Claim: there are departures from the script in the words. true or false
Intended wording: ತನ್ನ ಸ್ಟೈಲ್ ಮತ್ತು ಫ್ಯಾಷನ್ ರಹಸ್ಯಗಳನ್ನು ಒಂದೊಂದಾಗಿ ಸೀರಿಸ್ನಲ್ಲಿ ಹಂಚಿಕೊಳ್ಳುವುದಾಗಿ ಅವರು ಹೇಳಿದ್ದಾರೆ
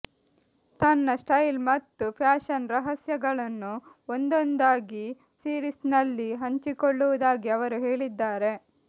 false